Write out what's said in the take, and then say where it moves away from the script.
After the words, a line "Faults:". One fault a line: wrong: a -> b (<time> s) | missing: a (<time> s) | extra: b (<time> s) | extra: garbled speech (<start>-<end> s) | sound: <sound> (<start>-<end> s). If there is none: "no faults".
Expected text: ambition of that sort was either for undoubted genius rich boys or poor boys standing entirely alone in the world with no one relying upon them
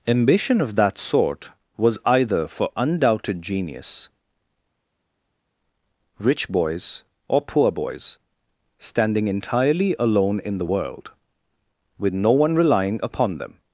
ambition of that sort was either for undoubted genius rich boys or poor boys standing entirely alone in the world with no one relying upon them
Faults:
no faults